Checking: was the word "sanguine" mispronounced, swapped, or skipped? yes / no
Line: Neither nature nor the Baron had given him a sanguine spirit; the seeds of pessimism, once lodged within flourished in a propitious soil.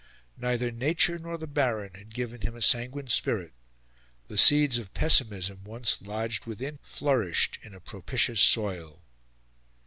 no